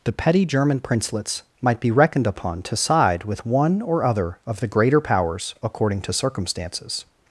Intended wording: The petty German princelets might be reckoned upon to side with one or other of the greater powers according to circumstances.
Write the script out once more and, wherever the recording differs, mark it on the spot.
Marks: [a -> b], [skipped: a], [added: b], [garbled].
The petty German princelets might be reckoned upon to side with one or other of the greater powers according to circumstances.